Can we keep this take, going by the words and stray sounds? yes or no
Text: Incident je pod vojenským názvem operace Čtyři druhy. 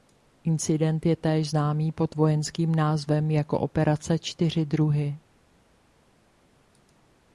no